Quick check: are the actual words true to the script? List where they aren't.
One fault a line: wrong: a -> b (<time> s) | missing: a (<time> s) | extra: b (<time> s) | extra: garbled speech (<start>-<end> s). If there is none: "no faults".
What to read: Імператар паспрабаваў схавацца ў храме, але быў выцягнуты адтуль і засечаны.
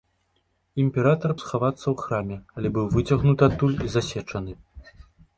missing: паспрабаваў (1.3 s)